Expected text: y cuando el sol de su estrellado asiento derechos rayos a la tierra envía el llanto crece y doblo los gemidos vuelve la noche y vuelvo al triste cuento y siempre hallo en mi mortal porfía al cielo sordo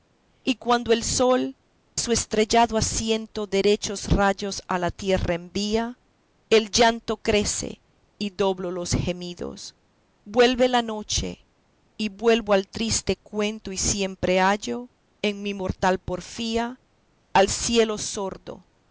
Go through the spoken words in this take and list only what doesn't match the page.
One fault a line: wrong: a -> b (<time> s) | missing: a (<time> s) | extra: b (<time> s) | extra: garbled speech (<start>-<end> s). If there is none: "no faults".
missing: de (1.6 s)